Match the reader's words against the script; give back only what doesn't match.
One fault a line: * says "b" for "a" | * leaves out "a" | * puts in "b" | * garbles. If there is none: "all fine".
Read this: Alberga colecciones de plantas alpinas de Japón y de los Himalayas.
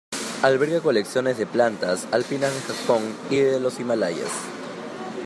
all fine